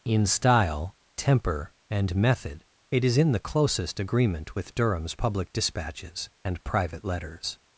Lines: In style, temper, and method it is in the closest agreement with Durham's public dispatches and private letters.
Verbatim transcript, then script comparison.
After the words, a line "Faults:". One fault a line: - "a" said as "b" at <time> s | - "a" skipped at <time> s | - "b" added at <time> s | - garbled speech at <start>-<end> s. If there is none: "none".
In style, temper, and method it is in the closest agreement with Durham's public dispatches and private letters.
Faults:
none